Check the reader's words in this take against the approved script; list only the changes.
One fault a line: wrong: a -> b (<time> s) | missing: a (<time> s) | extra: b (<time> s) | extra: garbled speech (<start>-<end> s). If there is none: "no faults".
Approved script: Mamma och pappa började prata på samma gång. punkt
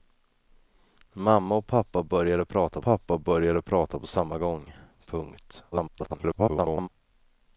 extra: pappa började prata (2.8 s)
extra: garbled speech (5.7-6.9 s)